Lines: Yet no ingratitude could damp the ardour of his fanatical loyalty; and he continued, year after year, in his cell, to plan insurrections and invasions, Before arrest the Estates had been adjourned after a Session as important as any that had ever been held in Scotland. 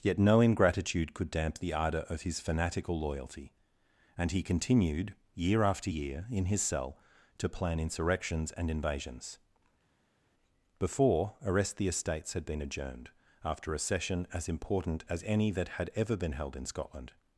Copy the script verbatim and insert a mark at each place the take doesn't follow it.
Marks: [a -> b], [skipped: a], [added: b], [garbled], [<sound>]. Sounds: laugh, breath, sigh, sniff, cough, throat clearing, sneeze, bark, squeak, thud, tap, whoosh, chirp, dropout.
Yet no ingratitude could damp the ardour of his fanatical loyalty; and he continued, year after year, in his cell, to plan insurrections and invasions, Before arrest the Estates had been adjourned after a Session as important as any that had ever been held in Scotland.